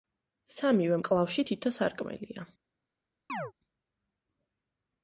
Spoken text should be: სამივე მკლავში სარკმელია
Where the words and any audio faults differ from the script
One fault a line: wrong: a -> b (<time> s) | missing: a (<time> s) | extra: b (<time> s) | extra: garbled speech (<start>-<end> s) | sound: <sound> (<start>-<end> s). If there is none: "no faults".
extra: თითო (1.5 s)
sound: chirp (3.3-3.5 s)